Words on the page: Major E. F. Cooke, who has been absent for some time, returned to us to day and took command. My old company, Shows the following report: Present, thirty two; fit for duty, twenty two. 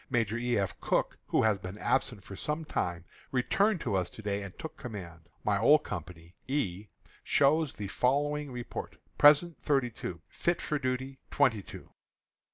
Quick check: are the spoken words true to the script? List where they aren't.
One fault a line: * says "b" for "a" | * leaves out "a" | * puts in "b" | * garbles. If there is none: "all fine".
* puts in "E"